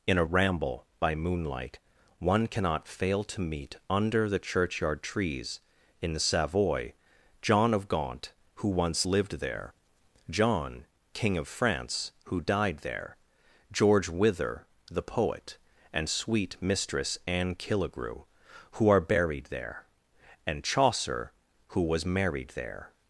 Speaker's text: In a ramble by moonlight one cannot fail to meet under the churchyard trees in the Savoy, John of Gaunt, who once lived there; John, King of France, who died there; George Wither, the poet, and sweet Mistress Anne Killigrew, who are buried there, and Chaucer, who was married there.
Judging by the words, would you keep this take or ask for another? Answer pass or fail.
pass